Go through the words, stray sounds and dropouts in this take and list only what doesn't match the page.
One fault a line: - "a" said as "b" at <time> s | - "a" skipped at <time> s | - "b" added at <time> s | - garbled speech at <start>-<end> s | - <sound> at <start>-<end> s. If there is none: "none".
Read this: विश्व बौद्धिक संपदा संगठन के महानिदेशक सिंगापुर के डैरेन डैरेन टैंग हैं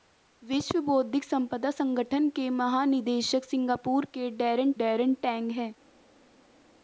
none